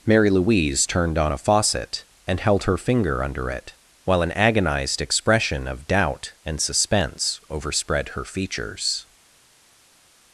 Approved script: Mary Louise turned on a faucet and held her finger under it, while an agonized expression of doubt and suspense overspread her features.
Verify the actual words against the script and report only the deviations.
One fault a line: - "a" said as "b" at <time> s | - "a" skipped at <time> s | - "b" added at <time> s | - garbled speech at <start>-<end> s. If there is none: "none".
none